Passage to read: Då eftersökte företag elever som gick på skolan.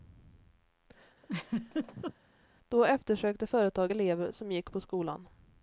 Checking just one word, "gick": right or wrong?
right